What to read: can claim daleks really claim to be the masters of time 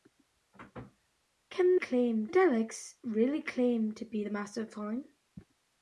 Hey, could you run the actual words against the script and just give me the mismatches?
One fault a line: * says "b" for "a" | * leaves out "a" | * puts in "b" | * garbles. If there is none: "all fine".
all fine